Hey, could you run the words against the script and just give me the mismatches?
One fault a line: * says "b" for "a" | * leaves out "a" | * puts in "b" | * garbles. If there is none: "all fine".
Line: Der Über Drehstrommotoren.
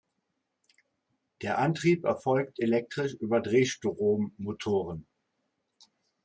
* puts in "Antrieb erfolgt elektrisch"